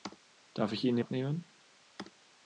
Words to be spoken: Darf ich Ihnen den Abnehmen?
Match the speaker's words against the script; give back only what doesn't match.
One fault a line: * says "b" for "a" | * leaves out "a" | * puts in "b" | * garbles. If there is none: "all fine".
all fine